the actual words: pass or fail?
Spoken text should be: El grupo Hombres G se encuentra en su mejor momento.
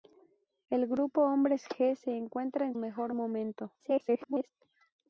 fail